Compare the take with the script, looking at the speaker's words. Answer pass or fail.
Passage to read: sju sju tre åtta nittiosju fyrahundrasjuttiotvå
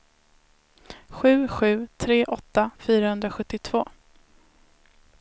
fail